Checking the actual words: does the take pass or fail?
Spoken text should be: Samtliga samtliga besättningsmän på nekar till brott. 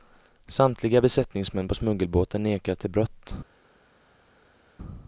fail